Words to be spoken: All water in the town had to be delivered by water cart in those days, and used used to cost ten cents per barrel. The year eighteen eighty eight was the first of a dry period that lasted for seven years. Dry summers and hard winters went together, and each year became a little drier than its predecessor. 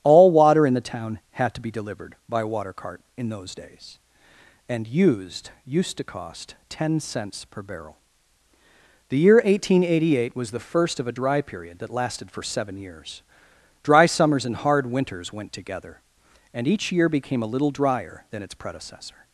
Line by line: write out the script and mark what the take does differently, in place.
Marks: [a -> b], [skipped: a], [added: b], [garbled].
All water in the town had to be delivered by water cart in those days, and used used to cost ten cents per barrel. The year eighteen eighty eight was the first of a dry period that lasted for seven years. Dry summers and hard winters went together, and each year became a little drier than its predecessor.